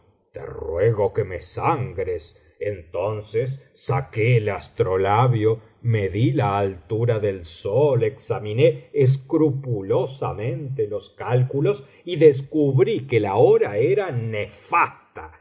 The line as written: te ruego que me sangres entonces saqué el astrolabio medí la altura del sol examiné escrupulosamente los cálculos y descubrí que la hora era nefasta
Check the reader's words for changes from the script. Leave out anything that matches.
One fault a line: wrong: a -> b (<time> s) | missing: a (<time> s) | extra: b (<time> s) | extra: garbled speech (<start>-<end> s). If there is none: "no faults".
no faults